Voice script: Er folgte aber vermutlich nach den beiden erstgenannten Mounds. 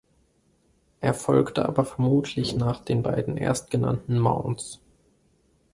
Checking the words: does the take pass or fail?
pass